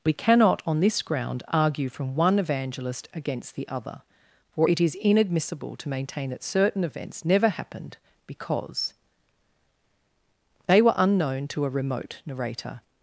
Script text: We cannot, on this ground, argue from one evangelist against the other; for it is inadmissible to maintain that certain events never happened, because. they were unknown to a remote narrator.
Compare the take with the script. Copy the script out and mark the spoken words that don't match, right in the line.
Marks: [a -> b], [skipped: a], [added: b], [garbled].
We cannot, on this ground, argue from one evangelist against the other; for it is inadmissible to maintain that certain events never happened, because. they were unknown to a remote narrator.